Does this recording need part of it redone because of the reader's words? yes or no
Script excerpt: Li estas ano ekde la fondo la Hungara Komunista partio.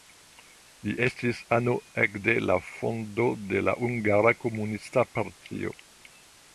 yes